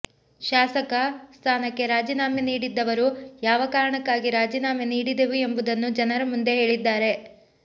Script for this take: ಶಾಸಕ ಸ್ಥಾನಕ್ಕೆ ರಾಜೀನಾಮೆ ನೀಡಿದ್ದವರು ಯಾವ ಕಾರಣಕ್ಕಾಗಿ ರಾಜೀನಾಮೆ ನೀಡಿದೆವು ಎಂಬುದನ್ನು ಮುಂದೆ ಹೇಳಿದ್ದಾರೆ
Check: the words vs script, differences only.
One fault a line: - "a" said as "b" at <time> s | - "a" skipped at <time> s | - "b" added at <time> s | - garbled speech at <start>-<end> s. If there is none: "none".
- "ಜನರ" added at 6.0 s